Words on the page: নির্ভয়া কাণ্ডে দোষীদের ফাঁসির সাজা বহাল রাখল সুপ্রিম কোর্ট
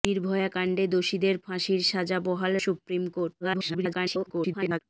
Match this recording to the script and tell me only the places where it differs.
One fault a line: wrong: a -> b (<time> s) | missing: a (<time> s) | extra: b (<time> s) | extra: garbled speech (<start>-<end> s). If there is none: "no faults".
missing: রাখল (2.5 s)
extra: garbled speech (3.4-4.8 s)